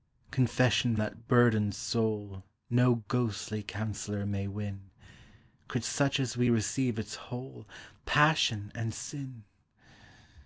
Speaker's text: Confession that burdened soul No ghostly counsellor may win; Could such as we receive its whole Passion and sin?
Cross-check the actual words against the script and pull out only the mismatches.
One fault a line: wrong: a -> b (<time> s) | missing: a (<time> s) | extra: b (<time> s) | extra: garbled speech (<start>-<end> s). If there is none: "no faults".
no faults